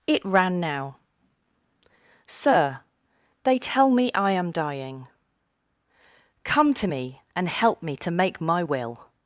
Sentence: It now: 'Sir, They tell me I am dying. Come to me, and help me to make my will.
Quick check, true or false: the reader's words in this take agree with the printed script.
false